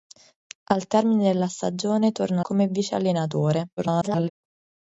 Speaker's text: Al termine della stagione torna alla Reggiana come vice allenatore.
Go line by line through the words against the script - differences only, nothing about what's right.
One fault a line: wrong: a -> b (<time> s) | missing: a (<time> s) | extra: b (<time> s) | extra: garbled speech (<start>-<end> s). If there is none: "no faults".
missing: alla Reggiana (2.4 s)
extra: garbled speech (3.8-4.3 s)